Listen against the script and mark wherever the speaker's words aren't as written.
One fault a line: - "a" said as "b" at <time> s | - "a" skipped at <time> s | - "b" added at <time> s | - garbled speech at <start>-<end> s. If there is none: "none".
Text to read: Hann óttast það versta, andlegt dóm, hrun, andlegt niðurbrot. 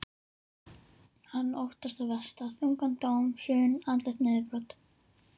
- "andlegt" said as "þungan" at 2.6 s